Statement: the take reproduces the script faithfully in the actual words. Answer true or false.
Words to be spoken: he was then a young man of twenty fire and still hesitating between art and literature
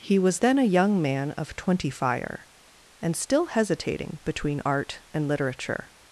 true